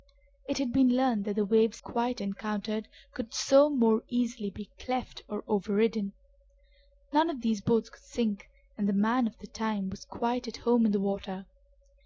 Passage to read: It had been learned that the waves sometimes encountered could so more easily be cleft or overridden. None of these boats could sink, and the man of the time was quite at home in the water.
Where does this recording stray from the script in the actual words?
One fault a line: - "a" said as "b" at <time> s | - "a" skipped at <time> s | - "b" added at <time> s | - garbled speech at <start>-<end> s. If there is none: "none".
- "sometimes" said as "quite" at 1.8 s